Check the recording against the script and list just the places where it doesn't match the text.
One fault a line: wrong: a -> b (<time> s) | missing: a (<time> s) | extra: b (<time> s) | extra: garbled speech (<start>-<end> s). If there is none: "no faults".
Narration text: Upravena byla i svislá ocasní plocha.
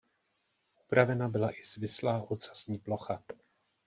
no faults